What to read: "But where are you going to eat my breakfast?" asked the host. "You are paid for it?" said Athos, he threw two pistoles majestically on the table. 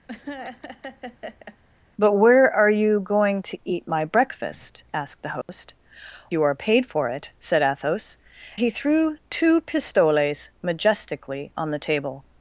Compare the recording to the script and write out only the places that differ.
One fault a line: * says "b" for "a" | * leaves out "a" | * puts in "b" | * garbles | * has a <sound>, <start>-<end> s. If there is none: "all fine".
* has a laugh, 0.1-1.6 s
* has a dropout, 5.4-5.5 s